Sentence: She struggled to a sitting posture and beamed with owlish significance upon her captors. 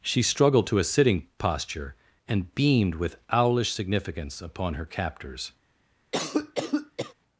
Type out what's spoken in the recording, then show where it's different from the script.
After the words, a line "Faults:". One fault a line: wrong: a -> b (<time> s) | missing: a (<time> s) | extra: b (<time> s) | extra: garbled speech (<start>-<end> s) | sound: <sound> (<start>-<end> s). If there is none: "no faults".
She struggled to a sitting posture and beamed with owlish significance upon her captors.
Faults:
sound: cough (6.1-7.1 s)